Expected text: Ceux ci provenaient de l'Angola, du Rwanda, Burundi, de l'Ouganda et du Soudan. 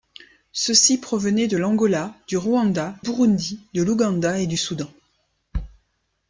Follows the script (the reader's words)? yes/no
yes